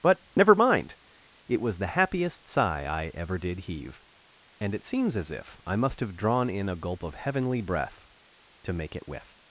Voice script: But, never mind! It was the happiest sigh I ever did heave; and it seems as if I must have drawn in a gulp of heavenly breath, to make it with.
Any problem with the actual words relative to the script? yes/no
no